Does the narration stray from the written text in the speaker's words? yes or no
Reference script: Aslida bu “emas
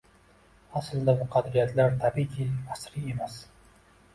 yes